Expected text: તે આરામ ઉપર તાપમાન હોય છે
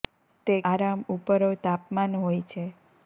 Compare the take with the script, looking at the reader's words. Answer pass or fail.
pass